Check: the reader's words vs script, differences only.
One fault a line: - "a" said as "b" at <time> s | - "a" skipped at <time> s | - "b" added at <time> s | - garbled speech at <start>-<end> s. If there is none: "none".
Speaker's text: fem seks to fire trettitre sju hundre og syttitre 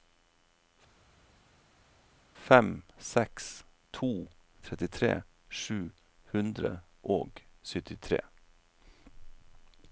- "fire" skipped at 4.1 s